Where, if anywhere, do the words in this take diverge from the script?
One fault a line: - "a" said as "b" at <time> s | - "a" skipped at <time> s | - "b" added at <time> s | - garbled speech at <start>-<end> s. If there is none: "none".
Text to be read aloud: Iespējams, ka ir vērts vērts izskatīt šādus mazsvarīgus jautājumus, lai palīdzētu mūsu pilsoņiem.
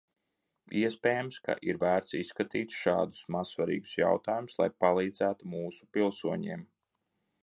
- "vērts" skipped at 2.2 s